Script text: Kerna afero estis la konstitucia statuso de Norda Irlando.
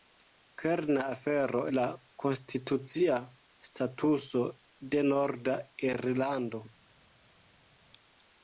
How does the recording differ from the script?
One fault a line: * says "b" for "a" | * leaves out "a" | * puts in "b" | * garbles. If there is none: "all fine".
* leaves out "estis"